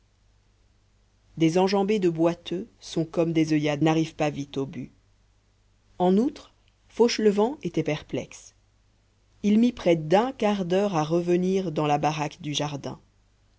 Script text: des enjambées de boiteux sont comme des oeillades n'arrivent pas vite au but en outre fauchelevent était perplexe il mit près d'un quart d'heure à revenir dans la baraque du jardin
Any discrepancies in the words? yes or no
no